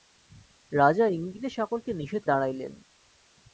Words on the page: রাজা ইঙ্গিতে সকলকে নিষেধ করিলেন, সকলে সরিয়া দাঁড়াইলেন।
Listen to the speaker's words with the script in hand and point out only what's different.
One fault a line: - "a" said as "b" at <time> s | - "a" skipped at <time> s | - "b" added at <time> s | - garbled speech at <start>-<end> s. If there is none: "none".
- "করিলেন সকলে সরিয়া" skipped at 2.2 s